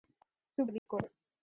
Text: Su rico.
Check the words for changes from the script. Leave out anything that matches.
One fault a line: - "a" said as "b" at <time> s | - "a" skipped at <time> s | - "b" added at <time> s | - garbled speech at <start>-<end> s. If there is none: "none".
none